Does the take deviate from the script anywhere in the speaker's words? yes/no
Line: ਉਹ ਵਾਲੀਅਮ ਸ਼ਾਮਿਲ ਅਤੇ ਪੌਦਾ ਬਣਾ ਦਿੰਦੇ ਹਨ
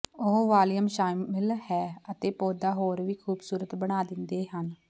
yes